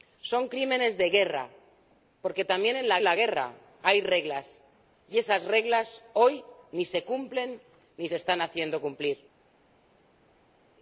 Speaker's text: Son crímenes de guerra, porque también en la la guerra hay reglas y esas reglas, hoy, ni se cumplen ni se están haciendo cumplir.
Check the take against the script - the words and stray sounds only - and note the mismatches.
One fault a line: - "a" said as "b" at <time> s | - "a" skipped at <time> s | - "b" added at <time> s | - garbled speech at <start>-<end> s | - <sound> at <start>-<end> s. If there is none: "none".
none